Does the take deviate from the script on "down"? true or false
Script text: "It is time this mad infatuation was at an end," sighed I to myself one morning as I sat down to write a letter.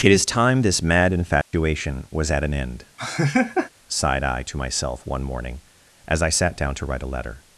false